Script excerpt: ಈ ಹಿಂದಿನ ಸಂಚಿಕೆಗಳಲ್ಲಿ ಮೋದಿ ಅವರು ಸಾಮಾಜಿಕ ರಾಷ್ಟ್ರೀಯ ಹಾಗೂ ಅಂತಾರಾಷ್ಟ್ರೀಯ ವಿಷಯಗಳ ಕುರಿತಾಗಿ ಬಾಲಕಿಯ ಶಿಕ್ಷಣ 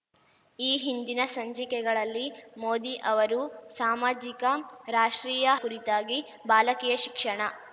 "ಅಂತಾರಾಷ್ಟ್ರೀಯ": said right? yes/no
no